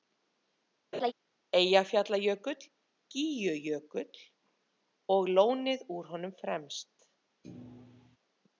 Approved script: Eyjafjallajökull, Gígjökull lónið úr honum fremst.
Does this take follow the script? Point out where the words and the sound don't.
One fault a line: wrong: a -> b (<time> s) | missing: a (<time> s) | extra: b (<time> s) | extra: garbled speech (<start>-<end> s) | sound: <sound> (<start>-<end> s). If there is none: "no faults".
sound: laugh (0.9-1.1 s)
extra: og (5.2 s)
sound: thud (7.4-8.2 s)